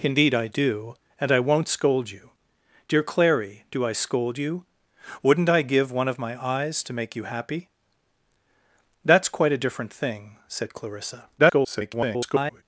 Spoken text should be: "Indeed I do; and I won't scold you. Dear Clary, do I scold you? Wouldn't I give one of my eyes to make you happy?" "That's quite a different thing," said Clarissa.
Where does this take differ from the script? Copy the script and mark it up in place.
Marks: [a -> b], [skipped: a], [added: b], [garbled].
"Indeed I do; and I won't scold you. Dear Clary, do I scold you? Wouldn't I give one of my eyes to make you happy?" "That's quite a different thing," said Clarissa. [garbled]